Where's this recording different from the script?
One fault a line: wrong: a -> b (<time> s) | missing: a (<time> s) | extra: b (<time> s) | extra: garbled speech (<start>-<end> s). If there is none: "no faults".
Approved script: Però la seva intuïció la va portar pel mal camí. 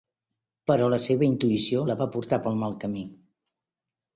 no faults